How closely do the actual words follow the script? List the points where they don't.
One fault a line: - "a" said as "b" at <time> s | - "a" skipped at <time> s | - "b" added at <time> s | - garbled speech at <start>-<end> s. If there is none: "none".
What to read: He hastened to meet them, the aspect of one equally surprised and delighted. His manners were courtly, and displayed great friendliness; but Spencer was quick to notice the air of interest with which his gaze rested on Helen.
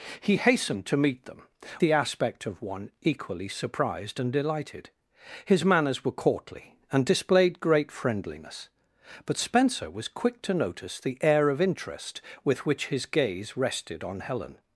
none